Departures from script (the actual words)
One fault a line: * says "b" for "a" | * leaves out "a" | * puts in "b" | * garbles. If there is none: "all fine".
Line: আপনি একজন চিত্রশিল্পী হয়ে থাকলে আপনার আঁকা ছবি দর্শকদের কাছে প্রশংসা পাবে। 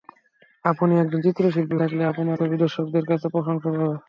* leaves out "হয়ে"
* leaves out "আঁকা"